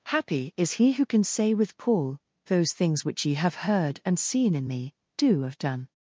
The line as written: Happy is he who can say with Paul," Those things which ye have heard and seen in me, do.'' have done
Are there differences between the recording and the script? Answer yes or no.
no